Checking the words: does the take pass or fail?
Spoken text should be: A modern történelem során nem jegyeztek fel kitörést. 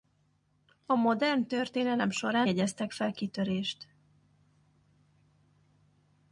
fail